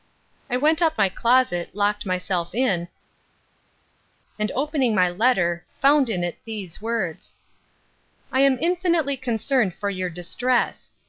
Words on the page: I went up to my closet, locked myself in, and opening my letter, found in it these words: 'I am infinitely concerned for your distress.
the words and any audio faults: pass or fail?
fail